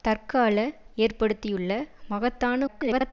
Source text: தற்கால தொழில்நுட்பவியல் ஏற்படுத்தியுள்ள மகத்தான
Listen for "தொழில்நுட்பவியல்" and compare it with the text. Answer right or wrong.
wrong